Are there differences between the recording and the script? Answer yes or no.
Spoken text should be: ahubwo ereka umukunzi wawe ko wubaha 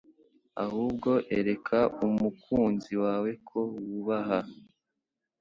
no